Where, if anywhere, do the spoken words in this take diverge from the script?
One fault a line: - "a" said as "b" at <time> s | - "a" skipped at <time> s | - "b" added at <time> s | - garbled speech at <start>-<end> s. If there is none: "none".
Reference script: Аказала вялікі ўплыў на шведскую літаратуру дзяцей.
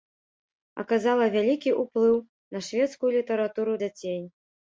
none